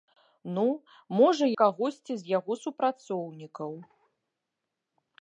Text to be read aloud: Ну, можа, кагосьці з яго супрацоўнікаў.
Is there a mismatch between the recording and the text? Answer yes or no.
no